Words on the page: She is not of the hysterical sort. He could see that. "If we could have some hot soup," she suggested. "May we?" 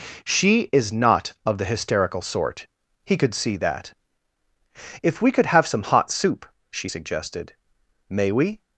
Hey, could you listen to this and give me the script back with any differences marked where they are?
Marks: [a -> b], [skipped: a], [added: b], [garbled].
She is not of the hysterical sort. He could see that. "If we could have some hot soup," she suggested. "May we?"